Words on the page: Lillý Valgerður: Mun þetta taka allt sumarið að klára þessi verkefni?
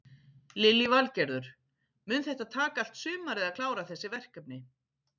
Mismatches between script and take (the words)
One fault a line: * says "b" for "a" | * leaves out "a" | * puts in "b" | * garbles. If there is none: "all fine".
all fine